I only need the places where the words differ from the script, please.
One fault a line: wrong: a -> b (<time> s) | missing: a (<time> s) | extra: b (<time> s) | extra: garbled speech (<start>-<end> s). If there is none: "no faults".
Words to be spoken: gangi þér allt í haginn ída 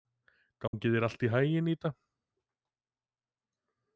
no faults